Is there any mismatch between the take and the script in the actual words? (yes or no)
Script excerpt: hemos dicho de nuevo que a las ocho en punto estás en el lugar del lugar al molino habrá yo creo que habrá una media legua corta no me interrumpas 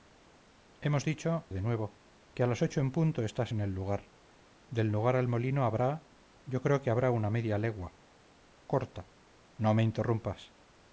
no